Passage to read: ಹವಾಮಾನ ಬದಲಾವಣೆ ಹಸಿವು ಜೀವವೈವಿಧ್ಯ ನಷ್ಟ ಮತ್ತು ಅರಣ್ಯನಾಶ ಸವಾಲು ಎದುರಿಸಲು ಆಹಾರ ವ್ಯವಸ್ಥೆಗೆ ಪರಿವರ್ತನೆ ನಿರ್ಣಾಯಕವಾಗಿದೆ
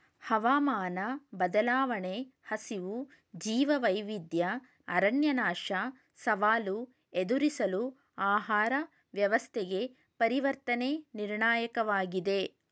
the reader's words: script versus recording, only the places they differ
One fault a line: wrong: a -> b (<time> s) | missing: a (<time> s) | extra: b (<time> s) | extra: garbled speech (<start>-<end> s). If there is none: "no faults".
missing: ನಷ್ಟ ಮತ್ತು (4.5 s)